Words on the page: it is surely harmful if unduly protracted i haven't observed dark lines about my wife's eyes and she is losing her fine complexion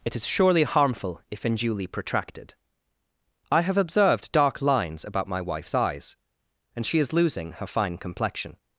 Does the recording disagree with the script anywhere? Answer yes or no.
yes